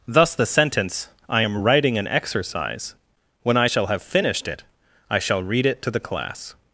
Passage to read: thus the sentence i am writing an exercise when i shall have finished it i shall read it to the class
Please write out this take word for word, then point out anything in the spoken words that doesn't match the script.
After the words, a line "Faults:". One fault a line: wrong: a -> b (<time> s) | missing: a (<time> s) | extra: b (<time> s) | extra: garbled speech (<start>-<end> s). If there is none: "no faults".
thus the sentence i am writing an exercise when i shall have finished it i shall read it to the class
Faults:
no faults